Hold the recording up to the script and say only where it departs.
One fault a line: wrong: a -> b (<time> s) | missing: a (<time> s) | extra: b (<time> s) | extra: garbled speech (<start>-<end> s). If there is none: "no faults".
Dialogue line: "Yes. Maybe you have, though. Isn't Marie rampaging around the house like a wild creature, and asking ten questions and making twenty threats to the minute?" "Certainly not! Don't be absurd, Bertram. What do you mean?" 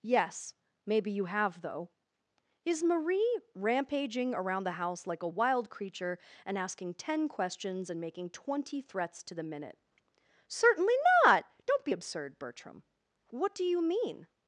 wrong: Isn't -> Is (2.6 s)